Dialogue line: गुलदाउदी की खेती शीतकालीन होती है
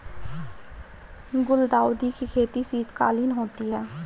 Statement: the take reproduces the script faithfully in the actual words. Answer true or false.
true